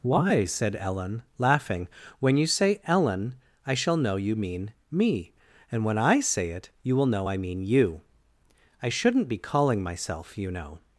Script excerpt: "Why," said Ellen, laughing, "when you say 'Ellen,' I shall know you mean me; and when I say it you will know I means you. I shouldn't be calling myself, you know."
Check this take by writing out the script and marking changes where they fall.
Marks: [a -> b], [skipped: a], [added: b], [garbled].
"Why," said Ellen, laughing, "when you say 'Ellen,' I shall know you mean me; and when I say it you will know I [means -> mean] you. I shouldn't be calling myself, you know."